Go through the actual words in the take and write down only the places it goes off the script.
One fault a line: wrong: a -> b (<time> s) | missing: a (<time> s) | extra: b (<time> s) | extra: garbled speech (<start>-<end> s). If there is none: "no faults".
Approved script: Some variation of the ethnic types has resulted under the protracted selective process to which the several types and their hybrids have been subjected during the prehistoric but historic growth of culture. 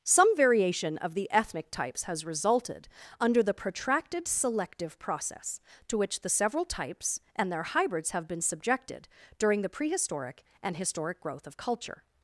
wrong: but -> and (10.6 s)